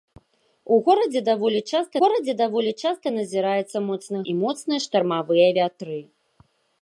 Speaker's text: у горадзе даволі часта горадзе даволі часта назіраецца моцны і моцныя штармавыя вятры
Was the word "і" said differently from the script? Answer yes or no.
no